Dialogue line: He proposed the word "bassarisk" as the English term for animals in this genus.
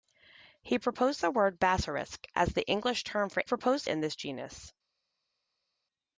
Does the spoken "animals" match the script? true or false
false